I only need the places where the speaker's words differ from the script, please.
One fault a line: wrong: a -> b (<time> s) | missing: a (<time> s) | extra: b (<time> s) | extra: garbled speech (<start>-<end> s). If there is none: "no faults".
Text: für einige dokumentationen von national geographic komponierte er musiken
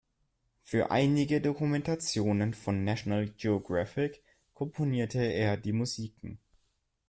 extra: die (5.6 s)